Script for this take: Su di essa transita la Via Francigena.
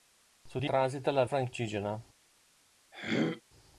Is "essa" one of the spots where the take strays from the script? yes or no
yes